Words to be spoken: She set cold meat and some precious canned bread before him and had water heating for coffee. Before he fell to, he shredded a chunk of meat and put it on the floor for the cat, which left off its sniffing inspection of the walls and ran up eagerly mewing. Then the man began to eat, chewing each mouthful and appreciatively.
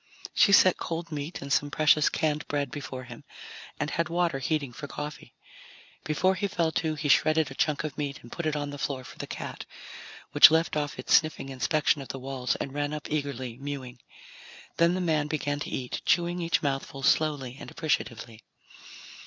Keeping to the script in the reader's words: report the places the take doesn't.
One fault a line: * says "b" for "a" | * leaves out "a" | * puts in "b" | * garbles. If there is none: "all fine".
* puts in "slowly"